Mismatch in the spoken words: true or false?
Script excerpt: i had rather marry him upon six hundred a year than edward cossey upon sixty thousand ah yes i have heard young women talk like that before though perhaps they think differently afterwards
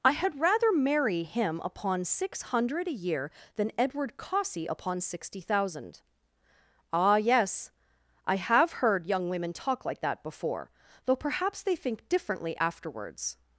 false